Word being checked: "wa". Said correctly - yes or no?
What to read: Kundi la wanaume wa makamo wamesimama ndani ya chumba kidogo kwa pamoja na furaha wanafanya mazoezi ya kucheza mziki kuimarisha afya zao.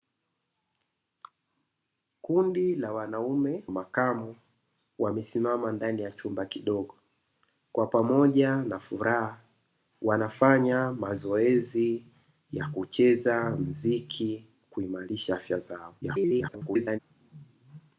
no